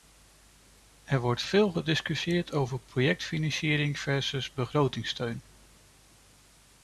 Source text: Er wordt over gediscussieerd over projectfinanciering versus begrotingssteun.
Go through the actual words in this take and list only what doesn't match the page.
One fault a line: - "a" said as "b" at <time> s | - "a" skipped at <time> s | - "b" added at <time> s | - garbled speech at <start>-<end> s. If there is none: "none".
- "over" said as "veel" at 1.4 s